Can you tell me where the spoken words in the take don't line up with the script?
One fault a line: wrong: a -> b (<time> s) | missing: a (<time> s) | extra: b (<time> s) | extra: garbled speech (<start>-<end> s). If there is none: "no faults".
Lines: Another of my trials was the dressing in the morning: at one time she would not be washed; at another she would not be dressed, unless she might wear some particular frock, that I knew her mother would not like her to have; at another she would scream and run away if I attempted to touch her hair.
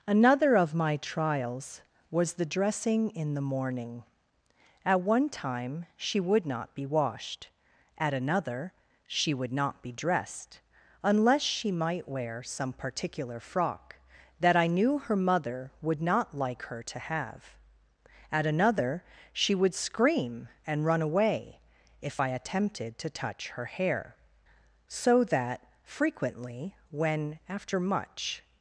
extra: So that frequently when after much (24.9 s)